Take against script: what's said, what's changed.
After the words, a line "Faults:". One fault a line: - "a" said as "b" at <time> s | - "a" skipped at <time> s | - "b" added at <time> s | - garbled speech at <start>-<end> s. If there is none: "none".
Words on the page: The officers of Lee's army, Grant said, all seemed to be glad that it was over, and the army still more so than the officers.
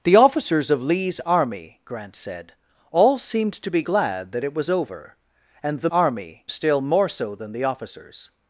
The officers of Lee's army, Grant said, all seemed to be glad that it was over, and the army still more so than the officers.
Faults:
none